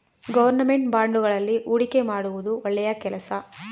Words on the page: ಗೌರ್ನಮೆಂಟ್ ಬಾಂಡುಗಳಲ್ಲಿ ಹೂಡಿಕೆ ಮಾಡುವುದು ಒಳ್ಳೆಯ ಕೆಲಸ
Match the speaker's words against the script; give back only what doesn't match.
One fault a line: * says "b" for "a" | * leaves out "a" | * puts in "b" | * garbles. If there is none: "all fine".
all fine